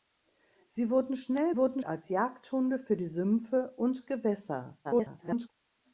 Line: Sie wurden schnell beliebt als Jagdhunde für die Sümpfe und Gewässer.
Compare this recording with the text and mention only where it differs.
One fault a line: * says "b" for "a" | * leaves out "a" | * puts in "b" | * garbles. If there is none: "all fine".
* says "wurden" for "beliebt"
* garbles